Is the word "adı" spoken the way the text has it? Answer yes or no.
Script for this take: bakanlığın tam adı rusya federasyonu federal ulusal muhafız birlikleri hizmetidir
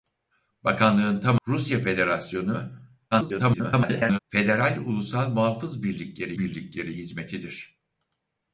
no